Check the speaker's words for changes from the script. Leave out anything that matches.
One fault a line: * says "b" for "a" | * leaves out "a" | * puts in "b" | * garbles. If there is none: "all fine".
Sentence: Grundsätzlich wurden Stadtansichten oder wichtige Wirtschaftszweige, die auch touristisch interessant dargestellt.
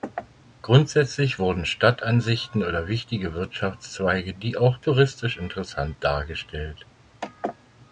all fine